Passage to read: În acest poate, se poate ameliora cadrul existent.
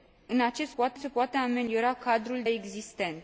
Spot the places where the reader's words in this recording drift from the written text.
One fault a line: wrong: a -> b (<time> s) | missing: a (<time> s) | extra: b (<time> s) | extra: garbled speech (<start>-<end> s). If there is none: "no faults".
no faults